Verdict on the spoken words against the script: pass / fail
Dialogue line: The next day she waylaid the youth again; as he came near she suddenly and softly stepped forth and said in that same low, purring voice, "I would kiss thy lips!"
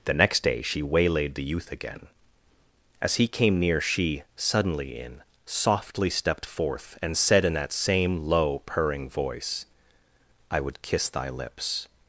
fail